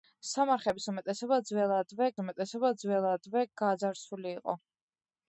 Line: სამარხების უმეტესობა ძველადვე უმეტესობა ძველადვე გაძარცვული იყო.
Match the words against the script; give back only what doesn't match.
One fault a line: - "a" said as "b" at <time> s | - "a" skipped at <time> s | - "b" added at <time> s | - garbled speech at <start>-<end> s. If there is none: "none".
none